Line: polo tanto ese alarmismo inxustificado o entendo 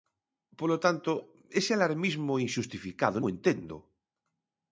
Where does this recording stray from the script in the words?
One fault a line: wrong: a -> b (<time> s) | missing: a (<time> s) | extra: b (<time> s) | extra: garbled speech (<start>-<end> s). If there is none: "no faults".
no faults